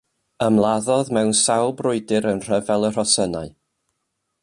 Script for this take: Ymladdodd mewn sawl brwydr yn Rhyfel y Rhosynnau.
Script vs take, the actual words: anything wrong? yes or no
no